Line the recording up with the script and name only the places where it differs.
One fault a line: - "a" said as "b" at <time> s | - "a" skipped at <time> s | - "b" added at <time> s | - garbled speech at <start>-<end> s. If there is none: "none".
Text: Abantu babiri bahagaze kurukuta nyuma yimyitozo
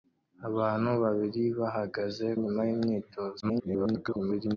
- "kurukuta" skipped at 2.3 s
- garbled speech at 3.4-4.6 s